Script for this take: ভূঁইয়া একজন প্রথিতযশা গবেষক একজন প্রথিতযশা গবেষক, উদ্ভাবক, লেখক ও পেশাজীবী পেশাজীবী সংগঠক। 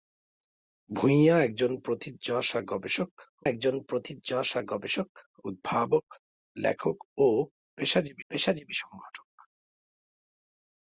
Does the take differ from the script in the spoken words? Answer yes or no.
no